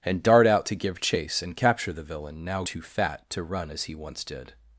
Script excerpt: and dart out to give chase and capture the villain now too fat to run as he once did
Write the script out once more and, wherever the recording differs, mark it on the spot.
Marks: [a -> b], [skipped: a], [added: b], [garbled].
and dart out to give chase and capture the villain now too fat to run as he once did